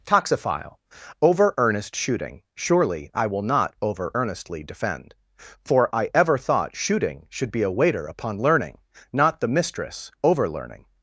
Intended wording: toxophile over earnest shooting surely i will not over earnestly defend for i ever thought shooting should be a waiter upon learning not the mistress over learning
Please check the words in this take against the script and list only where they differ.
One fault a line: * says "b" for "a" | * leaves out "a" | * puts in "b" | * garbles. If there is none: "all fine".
all fine